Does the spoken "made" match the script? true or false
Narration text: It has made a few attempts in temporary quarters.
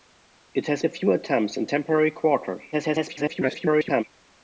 false